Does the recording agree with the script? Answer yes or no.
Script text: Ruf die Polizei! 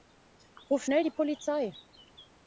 no